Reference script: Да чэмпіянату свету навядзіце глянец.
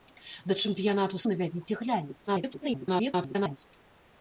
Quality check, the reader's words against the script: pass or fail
fail